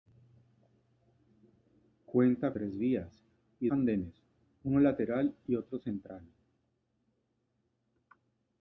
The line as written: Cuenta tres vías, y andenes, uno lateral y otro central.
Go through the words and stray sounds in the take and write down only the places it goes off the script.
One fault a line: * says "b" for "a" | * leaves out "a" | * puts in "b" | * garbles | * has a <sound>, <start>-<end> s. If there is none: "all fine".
all fine